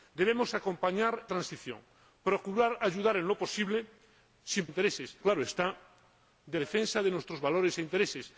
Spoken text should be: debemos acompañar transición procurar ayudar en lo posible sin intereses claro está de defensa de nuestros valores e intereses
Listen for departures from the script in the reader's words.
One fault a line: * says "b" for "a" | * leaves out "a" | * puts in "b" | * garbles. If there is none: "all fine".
all fine